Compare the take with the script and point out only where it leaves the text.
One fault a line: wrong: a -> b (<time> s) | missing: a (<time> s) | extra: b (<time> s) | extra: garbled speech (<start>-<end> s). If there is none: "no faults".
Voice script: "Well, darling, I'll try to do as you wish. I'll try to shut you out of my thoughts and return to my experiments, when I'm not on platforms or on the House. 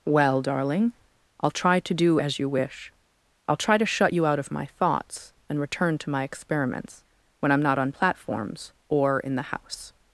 wrong: on -> in (9.2 s)